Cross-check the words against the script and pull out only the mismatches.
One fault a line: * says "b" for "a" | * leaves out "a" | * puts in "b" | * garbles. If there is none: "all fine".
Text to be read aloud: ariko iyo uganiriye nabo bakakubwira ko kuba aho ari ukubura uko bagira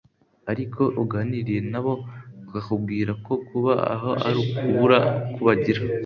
* leaves out "iyo"